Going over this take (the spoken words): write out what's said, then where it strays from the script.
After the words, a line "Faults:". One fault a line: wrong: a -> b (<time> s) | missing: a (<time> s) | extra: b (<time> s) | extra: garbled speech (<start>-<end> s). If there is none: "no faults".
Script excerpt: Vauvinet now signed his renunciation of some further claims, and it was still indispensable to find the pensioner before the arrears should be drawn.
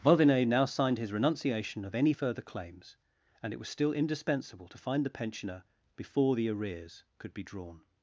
Vauvinet now signed his renunciation of any further claims, and it was still indispensable to find the pensioner before the arrears could be drawn.
Faults:
wrong: some -> any (1.9 s)
wrong: should -> could (7.2 s)